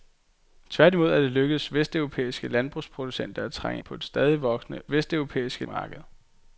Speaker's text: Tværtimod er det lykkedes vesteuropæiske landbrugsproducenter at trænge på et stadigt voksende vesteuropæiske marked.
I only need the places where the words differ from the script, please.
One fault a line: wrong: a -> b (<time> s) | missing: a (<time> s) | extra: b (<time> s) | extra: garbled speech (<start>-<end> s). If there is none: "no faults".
no faults